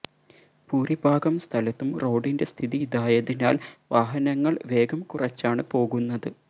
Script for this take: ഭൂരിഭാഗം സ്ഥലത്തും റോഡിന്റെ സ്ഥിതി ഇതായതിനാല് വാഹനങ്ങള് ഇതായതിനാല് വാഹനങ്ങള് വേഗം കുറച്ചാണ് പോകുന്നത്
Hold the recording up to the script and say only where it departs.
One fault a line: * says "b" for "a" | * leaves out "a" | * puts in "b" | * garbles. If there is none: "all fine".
* leaves out "ഇതായതിനാല് വാഹനങ്ങള്"